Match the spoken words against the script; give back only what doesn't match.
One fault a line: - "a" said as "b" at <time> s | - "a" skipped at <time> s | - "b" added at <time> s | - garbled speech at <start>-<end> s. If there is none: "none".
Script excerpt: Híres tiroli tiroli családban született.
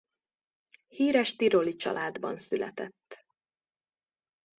- "tiroli" skipped at 1.7 s